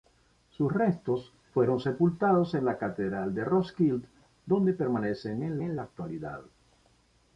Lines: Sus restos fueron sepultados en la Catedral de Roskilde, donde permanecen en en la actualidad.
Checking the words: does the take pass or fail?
pass